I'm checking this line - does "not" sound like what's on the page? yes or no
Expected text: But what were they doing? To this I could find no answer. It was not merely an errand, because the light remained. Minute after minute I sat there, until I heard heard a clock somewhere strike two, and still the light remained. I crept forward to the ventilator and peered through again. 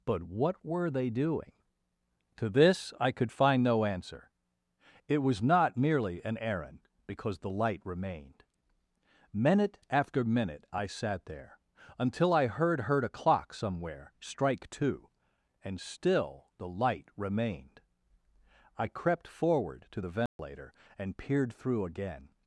yes